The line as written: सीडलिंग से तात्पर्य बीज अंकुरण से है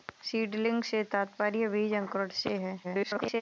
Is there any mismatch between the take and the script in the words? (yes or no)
yes